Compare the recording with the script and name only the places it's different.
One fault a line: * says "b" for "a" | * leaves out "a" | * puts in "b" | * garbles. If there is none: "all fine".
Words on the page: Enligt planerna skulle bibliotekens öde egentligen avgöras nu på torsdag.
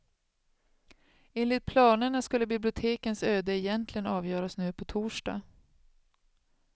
all fine